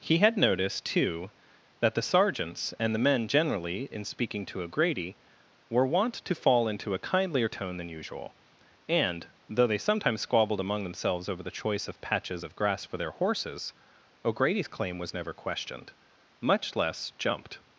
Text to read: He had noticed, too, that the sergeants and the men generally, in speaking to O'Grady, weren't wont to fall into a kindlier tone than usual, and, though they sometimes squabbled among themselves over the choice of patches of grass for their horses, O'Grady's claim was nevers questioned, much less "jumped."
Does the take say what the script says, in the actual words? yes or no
no